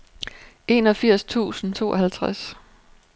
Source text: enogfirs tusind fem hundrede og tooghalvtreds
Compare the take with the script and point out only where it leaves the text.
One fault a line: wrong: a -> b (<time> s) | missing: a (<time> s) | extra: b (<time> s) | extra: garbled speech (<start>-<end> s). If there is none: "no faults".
missing: fem hundrede og (1.7 s)